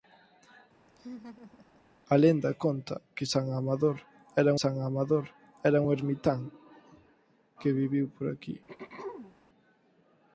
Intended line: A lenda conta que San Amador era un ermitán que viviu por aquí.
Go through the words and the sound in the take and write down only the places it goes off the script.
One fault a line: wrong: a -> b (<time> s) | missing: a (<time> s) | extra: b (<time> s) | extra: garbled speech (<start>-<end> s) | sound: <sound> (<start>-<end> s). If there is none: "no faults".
sound: laugh (0.9-1.8 s)
extra: San Amador era (4.6 s)
sound: throat clearing (8.7-9.4 s)